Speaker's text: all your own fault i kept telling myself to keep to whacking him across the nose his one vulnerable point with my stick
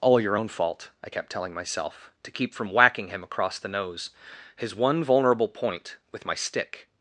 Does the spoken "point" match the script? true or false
true